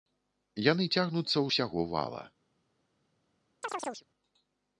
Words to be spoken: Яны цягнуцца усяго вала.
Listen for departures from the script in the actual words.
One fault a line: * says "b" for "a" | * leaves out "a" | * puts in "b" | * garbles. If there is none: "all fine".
all fine